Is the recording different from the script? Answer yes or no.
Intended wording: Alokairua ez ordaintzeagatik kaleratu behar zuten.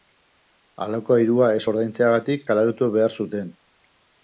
no